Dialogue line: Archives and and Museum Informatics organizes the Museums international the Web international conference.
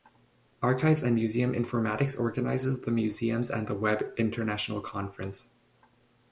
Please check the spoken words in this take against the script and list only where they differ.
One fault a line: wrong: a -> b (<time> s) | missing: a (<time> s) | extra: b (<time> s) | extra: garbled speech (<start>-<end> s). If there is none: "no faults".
missing: and (1.1 s)
wrong: international -> and (3.5 s)